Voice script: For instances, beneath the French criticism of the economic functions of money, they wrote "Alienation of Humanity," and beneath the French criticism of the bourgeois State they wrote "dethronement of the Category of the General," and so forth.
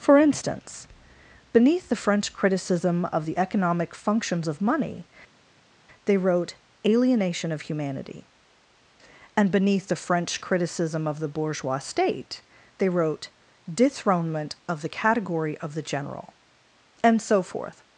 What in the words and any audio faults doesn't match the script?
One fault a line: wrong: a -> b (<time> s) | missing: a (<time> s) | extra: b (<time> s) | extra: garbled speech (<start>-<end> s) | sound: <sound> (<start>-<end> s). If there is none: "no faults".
wrong: instances -> instance (0.2 s)